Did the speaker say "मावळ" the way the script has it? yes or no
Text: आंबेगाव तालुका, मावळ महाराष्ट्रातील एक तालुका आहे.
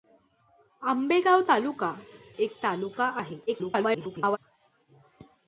no